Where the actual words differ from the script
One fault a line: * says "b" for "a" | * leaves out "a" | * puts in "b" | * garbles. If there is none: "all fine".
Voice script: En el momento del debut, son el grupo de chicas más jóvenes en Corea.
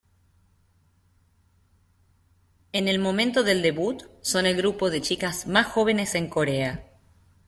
all fine